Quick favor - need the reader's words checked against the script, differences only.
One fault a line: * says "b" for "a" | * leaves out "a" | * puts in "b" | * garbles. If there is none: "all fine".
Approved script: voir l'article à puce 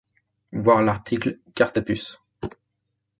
* puts in "carte"